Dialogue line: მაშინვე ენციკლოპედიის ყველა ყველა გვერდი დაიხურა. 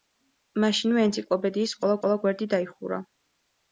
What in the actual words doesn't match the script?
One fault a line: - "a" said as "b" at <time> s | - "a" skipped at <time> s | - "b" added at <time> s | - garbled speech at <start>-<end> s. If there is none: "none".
none